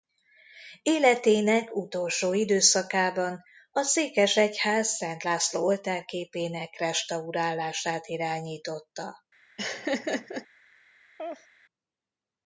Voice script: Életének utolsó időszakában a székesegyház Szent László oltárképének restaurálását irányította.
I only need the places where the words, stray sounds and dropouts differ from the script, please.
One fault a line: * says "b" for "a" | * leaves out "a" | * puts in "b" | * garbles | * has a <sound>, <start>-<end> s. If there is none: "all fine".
* has a laugh, 9.6-10.5 s
* has a laugh, 11.2-11.5 s